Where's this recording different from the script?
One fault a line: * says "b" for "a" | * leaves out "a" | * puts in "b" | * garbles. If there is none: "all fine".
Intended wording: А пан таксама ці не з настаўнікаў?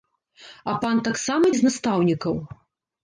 * leaves out "ці"